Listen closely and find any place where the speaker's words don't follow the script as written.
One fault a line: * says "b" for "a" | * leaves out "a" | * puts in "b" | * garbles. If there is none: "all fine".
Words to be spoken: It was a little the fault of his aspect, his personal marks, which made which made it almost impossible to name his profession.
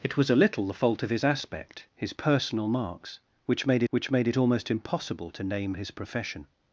all fine